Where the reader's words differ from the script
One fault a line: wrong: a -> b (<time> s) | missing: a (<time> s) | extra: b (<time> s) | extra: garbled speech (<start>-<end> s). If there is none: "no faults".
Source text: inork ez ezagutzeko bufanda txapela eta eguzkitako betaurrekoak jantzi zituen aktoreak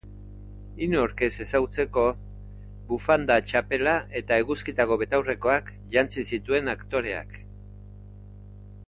no faults